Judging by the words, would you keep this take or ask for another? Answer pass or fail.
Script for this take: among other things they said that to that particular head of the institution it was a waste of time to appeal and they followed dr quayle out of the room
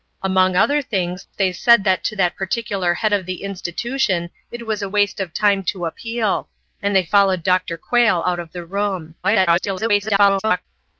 fail